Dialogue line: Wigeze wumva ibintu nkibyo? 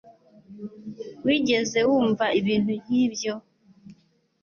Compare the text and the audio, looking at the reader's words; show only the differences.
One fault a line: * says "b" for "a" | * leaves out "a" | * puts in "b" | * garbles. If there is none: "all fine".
all fine